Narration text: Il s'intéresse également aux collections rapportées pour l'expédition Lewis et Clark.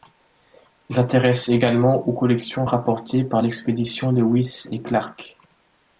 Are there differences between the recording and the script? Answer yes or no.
yes